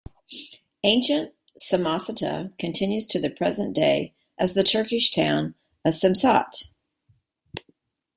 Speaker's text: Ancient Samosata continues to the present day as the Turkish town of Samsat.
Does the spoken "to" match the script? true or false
true